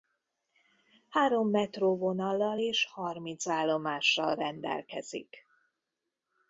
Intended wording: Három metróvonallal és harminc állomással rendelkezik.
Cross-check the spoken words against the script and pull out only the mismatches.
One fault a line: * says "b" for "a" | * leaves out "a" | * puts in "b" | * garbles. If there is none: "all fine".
all fine